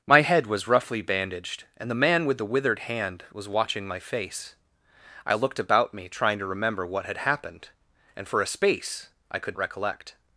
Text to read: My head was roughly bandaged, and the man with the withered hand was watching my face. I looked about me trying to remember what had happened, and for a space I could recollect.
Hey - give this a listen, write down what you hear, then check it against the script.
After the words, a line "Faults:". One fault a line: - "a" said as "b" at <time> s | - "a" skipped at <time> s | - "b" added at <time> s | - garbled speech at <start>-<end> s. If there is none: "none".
My head was roughly bandaged, and the man with the withered hand was watching my face. I looked about me trying to remember what had happened, and for a space I could recollect.
Faults:
none